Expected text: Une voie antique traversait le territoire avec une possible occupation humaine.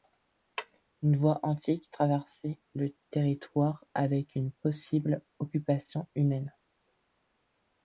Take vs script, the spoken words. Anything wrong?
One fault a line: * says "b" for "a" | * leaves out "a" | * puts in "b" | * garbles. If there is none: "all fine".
all fine